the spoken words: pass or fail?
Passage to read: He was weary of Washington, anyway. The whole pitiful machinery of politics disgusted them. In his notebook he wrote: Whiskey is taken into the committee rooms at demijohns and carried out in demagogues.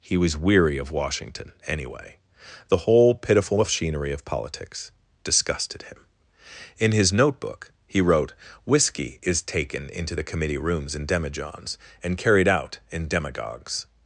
fail